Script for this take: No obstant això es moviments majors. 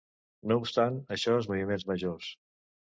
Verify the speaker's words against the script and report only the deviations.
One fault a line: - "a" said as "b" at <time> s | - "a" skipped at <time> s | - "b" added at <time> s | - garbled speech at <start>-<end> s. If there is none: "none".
none